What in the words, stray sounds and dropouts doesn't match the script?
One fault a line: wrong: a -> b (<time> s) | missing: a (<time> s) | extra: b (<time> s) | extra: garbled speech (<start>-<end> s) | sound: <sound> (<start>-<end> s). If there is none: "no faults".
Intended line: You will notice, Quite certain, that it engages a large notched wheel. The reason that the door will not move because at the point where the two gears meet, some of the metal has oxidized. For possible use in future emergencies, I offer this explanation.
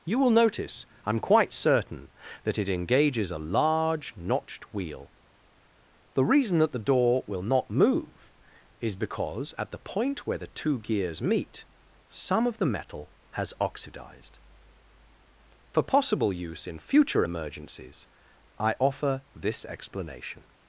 extra: I'm (1.1 s)
extra: is (8.8 s)